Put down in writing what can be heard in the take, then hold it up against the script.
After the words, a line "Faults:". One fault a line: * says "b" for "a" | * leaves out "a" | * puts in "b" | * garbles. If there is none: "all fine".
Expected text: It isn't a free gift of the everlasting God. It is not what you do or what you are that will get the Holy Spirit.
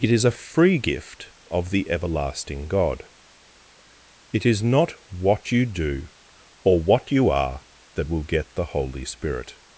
It is a free gift of the everlasting God. It is not what you do or what you are that will get the Holy Spirit.
Faults:
* says "is" for "isn't"